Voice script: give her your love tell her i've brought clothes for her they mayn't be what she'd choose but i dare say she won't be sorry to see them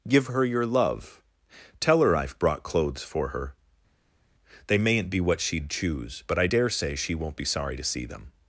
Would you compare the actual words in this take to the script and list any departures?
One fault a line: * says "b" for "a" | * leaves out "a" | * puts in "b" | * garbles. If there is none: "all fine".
all fine